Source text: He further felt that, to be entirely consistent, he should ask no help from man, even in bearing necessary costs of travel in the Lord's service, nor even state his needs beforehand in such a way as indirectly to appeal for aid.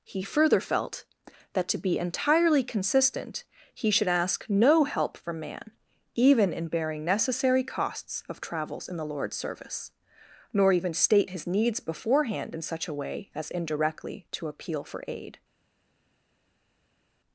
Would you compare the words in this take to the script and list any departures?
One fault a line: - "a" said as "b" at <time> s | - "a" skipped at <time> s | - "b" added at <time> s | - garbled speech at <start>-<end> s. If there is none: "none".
- "travel" said as "travels" at 8.4 s